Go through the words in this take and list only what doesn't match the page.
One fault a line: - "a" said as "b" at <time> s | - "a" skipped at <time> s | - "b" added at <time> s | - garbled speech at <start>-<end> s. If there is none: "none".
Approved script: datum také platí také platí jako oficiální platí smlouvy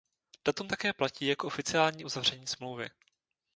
- "také platí" skipped at 1.3 s
- "platí" said as "uzavření" at 2.0 s